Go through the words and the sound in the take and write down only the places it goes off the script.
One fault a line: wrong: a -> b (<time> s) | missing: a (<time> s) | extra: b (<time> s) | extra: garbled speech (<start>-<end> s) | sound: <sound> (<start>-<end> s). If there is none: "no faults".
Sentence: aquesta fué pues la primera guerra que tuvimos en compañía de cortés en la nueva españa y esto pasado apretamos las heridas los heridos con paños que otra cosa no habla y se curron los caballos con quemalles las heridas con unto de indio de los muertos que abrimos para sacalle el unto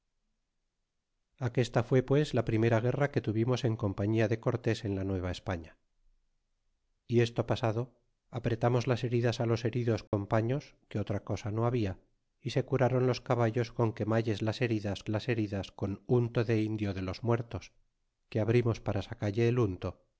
sound: dropout (10.1-10.1 s)
extra: las heridas (15.1 s)